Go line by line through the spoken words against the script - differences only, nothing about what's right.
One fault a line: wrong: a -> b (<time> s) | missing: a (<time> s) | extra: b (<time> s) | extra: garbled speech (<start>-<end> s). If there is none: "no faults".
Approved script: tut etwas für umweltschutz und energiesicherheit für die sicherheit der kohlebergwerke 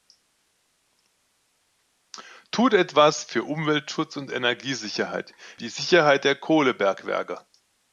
missing: für (5.3 s)